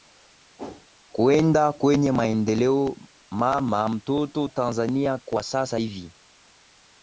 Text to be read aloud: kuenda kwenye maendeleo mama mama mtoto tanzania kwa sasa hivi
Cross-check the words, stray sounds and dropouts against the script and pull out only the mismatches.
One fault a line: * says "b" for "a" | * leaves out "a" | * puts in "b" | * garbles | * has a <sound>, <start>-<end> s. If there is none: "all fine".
* has a whoosh, 0.6-0.9 s
* leaves out "mama"